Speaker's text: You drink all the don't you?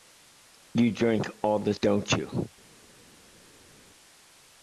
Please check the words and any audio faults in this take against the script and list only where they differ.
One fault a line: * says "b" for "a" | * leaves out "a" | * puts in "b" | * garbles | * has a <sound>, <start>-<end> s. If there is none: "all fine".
all fine